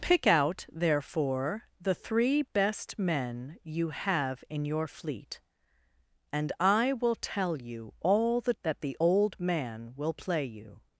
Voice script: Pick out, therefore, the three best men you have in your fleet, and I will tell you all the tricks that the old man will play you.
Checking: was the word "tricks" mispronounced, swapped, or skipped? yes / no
yes